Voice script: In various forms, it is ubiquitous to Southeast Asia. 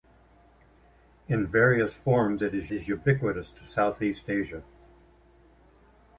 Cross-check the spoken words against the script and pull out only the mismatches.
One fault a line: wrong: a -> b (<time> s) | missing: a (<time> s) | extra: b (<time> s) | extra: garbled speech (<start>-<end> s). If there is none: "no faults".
extra: is (2.7 s)